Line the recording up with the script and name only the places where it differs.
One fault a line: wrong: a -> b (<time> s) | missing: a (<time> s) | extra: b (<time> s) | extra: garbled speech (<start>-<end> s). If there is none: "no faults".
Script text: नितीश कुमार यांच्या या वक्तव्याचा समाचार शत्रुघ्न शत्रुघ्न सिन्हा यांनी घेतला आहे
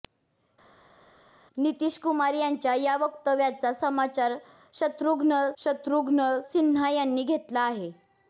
no faults